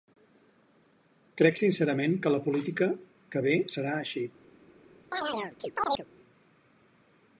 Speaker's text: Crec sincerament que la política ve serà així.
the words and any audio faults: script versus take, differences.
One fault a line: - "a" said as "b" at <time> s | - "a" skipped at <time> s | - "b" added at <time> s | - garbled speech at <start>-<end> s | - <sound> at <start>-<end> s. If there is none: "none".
- "que" added at 3.4 s
- chirp at 5.1-6.1 s